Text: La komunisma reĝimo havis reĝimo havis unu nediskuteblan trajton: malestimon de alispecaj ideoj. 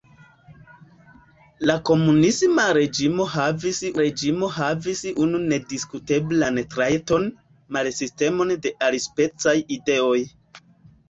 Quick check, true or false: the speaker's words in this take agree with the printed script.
true